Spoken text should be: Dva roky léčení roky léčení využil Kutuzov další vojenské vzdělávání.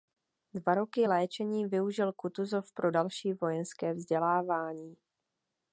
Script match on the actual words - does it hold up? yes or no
no